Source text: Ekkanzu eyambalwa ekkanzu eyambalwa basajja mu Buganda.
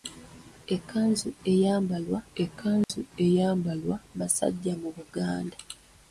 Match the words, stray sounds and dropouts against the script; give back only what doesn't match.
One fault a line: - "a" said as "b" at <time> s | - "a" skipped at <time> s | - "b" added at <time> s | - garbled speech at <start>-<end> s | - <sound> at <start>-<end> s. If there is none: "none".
- dropout at 2.8-2.9 s